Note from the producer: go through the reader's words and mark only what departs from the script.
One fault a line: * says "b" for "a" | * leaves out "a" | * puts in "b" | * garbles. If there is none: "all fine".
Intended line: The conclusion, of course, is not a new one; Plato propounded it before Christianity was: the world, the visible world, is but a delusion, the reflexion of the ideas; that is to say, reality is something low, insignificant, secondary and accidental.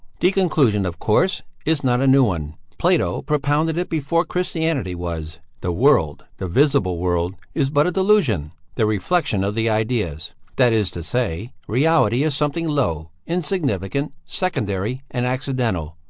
all fine